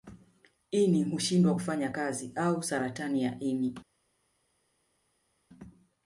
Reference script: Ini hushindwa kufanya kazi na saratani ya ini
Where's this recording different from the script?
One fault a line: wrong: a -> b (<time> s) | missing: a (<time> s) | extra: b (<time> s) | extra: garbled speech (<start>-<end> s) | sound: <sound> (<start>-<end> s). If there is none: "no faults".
wrong: na -> au (2.3 s)